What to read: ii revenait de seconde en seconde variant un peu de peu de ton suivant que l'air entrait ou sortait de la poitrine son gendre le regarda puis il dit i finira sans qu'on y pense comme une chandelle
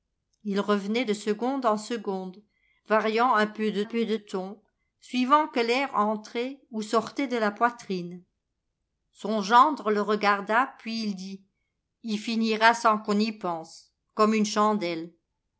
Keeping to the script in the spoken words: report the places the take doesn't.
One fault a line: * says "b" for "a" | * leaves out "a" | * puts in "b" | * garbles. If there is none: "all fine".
all fine